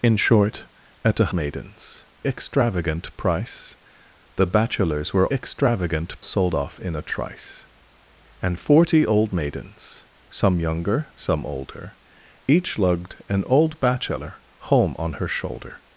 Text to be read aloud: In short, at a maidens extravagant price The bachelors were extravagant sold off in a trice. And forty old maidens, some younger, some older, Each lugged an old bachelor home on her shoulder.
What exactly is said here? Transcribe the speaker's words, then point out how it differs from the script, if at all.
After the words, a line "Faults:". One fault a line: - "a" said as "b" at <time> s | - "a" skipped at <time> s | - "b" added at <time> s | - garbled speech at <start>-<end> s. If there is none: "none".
In short, at a maidens extravagant price The bachelors were extravagant sold off in a trice. And forty old maidens, some younger, some older, Each lugged an old bachelor home on her shoulder.
Faults:
none